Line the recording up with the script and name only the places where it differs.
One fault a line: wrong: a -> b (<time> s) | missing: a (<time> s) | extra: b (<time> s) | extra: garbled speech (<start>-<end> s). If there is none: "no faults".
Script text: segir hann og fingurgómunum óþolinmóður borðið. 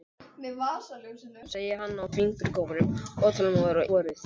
no faults